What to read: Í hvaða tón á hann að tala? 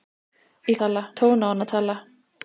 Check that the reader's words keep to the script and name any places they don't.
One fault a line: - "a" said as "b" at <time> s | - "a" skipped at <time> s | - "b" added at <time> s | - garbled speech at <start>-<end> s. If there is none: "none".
- "hvaða" said as "tala" at 0.8 s